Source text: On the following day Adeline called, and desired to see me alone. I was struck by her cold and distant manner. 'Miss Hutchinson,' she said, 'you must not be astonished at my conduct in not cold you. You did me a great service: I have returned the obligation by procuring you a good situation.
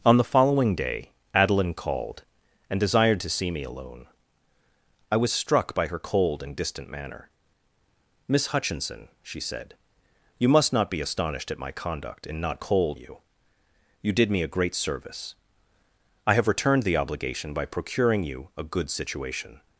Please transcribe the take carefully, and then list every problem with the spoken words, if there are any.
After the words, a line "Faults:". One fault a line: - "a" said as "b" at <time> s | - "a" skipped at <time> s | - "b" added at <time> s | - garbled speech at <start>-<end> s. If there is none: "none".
On the following day Adeline called, and desired to see me alone. I was struck by her cold and distant manner. 'Miss Hutchinson,' she said, 'you must not be astonished at my conduct in not cold you. You did me a great service: I have returned the obligation by procuring you a good situation.
Faults:
none